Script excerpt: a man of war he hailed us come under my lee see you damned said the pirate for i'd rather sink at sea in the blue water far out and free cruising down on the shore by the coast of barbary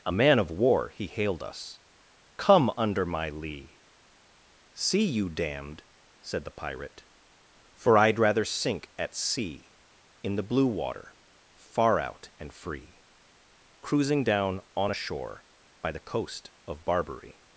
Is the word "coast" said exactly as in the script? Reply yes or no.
yes